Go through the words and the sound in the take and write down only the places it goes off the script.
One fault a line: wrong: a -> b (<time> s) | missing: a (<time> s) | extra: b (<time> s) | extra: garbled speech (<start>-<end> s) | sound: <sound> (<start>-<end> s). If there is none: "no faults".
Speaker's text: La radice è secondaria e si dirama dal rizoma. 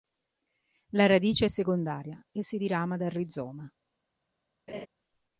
sound: laugh (4.7-4.9 s)